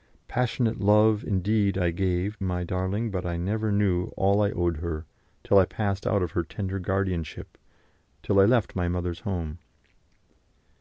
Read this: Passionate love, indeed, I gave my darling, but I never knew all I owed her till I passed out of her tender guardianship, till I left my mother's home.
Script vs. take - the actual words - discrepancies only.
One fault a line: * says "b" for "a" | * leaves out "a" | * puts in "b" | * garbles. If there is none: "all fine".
all fine